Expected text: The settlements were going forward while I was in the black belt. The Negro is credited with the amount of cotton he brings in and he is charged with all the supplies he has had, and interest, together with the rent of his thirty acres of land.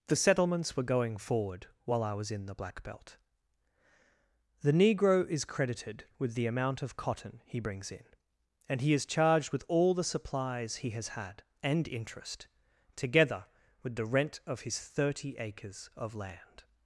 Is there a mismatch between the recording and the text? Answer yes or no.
no